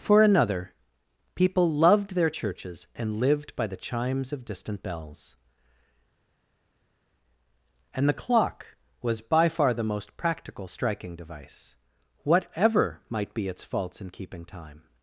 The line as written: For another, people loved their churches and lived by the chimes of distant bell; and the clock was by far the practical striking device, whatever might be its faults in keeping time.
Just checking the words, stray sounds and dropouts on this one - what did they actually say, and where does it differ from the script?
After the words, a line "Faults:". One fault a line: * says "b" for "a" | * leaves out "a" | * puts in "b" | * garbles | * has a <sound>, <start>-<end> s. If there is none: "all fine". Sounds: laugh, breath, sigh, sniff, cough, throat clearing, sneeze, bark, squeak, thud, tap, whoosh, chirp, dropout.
For another, people loved their churches and lived by the chimes of distant bells; and the clock was by far the most practical striking device, whatever might be its faults in keeping time.
Faults:
* says "bells" for "bell"
* puts in "most"